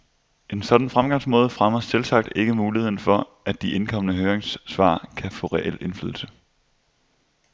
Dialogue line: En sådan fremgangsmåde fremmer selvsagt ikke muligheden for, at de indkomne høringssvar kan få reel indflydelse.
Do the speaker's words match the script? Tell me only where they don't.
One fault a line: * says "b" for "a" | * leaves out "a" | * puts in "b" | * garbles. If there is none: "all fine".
all fine